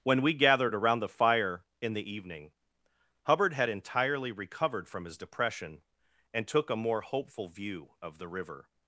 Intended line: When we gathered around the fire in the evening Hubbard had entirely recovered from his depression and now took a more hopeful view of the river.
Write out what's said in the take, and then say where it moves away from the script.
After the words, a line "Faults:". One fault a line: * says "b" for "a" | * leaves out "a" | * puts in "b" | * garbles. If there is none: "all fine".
When we gathered around the fire in the evening Hubbard had entirely recovered from his depression and took a more hopeful view of the river.
Faults:
* leaves out "now"